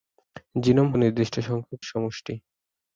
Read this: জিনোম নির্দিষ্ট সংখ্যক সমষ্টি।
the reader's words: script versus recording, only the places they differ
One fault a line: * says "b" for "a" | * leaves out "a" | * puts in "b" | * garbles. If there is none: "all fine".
all fine